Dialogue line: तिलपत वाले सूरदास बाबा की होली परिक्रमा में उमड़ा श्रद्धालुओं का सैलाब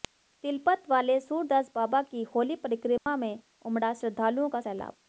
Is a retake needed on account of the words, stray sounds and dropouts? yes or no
yes